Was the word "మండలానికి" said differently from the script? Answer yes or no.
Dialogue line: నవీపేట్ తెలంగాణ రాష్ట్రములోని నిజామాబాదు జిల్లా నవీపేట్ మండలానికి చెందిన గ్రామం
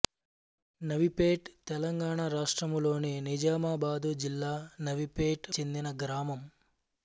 yes